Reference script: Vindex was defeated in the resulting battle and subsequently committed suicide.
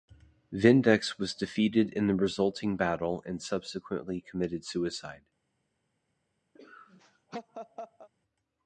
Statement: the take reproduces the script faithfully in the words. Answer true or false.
true